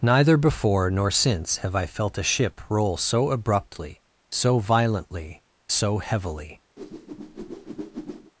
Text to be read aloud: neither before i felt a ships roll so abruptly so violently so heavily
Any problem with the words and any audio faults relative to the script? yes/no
yes